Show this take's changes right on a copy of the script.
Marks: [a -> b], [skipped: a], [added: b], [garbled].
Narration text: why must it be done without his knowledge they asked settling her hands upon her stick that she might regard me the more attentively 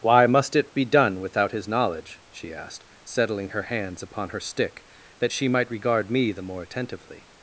why must it be done without his knowledge [they -> she] asked settling her hands upon her stick that she might regard me the more attentively